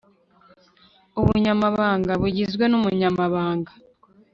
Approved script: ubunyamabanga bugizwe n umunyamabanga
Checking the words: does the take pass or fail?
pass